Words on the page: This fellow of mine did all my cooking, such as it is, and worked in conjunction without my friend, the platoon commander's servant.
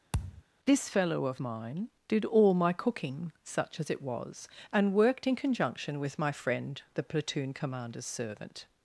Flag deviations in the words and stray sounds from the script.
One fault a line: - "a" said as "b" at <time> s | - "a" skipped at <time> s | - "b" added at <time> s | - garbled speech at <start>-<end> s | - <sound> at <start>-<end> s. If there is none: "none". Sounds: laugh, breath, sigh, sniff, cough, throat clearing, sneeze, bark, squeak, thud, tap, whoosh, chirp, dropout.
- thud at 0.1-0.4 s
- "is" said as "was" at 4.0 s
- "without" said as "with" at 6.0 s